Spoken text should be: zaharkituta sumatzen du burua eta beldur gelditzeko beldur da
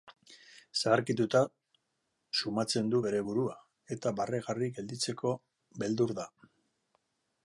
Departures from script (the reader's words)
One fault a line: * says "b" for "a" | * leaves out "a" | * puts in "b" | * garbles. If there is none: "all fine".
* puts in "bere"
* says "barregarri" for "beldur"